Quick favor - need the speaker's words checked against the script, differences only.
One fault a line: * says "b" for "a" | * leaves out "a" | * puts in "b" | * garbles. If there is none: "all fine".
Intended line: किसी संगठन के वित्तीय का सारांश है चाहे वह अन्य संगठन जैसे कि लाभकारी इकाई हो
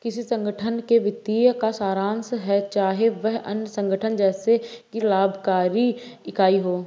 all fine